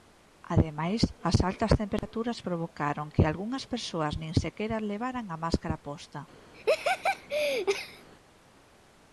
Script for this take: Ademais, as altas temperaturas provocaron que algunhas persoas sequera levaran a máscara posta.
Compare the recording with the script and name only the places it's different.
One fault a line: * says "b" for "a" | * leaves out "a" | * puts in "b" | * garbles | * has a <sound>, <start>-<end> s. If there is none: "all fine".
* has a dropout, 2.0-2.0 s
* puts in "nin"
* has a laugh, 6.5-8.1 s